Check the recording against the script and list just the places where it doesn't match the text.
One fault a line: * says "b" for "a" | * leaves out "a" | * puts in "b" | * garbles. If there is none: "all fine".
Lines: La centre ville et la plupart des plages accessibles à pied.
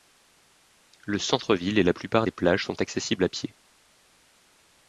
* says "Le" for "La"
* puts in "sont"